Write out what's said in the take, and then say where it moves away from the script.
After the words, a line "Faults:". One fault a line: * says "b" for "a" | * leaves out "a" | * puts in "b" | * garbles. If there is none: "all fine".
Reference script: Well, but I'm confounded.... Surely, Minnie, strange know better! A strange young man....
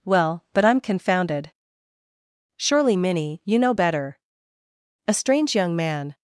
Well, but I'm confounded.... Surely, Minnie, you know better! A strange young man....
Faults:
* says "you" for "strange"